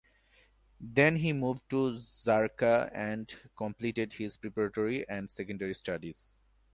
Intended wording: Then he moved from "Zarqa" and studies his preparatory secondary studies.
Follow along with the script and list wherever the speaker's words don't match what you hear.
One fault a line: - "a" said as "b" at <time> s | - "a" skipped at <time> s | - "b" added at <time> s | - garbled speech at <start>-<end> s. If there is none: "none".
- "from" said as "to" at 1.7 s
- "studies" said as "completed" at 3.5 s
- "and" added at 5.1 s